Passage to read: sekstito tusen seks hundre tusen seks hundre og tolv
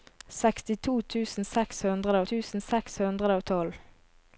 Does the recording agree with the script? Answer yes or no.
yes